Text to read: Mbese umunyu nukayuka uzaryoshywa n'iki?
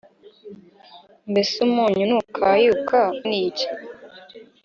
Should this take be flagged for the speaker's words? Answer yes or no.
yes